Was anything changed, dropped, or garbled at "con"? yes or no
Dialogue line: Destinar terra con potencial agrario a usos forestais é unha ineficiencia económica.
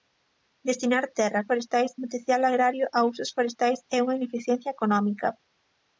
yes